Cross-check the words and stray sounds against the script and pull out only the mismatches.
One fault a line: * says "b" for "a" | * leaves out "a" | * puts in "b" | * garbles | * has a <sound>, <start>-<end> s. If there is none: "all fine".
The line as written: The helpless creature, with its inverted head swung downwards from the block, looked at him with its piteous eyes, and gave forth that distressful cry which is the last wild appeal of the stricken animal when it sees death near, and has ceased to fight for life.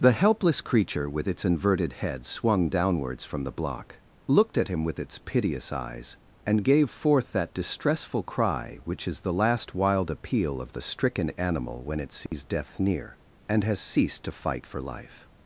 * has a dropout, 12.3-12.3 s